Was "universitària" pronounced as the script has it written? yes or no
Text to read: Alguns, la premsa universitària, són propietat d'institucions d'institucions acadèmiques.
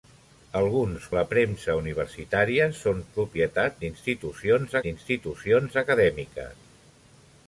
yes